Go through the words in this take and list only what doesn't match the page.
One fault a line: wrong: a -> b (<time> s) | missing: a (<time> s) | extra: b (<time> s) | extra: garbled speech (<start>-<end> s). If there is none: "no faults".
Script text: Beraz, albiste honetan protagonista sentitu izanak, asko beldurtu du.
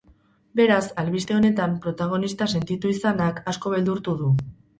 no faults